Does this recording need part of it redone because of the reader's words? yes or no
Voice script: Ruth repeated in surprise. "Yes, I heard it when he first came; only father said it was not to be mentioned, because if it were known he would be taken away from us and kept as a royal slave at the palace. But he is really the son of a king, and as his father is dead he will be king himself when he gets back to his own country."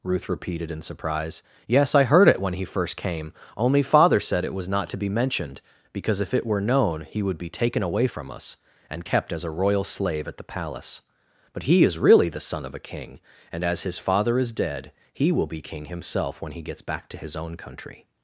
no